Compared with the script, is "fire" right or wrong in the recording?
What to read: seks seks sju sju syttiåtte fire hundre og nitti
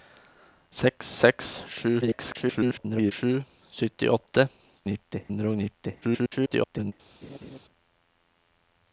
wrong